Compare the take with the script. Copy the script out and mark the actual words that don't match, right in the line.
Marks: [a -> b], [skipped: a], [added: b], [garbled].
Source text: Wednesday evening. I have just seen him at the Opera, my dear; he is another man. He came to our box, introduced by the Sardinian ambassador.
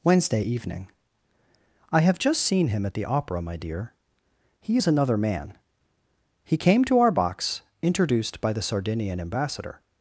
Wednesday evening. I have just seen him at the Opera, my dear; he is another man. He came to our box, introduced by the Sardinian ambassador.